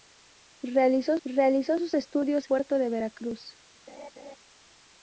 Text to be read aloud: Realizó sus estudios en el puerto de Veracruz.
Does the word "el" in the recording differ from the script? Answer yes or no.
yes